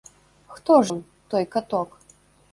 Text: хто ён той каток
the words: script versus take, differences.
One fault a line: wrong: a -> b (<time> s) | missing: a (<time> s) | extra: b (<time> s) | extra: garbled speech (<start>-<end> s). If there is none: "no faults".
no faults